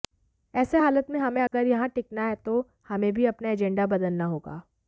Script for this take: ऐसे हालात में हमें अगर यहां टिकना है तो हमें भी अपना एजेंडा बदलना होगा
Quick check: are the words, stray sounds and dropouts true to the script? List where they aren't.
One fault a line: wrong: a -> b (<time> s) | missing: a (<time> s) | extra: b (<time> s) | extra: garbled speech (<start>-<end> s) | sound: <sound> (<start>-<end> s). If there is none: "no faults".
sound: dropout (1.5-1.5 s)